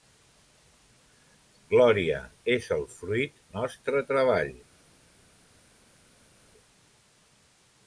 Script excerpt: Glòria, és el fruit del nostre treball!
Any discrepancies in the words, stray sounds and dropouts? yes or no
yes